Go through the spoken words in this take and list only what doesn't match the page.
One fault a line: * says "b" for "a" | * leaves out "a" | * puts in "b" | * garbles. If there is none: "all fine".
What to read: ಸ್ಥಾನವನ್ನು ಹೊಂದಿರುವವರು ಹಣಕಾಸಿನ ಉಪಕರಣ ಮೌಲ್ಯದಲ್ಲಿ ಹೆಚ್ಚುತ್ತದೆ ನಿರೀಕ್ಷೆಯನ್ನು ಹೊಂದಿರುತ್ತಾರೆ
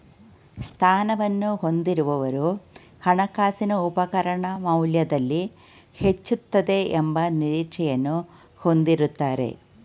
* puts in "ಎಂಬ"